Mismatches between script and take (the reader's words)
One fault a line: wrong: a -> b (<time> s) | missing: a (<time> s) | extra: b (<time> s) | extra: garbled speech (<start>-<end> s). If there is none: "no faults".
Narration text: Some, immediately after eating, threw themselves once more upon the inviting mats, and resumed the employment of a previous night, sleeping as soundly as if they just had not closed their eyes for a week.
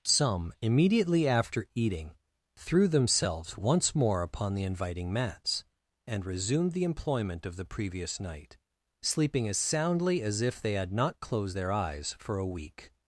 wrong: a -> the (7.5 s)
missing: just (10.7 s)